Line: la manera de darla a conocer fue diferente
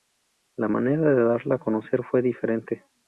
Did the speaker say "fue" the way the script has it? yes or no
yes